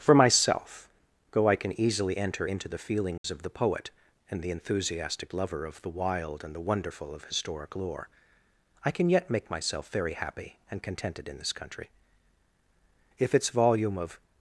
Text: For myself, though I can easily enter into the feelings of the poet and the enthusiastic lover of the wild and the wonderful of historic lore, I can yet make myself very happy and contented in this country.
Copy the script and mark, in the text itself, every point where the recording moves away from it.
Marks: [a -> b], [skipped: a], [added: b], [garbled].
For myself, though I can easily enter into the feelings of the poet and the enthusiastic lover of the wild and the wonderful of historic lore, I can yet make myself very happy and contented in this country. [added: If its volume of]